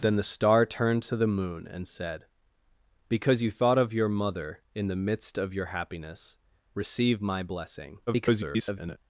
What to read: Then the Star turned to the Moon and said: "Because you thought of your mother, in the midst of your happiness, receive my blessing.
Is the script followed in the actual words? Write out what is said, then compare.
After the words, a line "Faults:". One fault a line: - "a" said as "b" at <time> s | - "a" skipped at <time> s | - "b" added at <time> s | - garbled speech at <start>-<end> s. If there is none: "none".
Then the Star turned to the Moon and said: "Because you thought of your mother, in the midst of your happiness, receive my blessing. [garbled]
Faults:
- garbled speech at 8.1-9.0 s